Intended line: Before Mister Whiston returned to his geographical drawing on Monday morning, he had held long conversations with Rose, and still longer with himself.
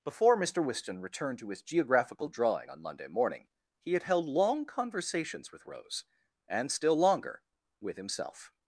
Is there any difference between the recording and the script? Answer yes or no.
no